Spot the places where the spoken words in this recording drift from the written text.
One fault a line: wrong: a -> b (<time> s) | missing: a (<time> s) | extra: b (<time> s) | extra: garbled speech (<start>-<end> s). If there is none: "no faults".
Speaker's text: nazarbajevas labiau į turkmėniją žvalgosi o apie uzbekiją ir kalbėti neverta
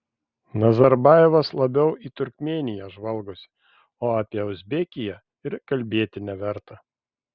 no faults